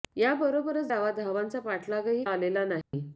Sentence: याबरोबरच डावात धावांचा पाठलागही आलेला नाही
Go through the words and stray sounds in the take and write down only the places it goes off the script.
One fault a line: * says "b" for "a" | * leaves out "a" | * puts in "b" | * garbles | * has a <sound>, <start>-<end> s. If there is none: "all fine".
* has a dropout, 2.8-2.9 s